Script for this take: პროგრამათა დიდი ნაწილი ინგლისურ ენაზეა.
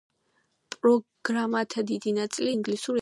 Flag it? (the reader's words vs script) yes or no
no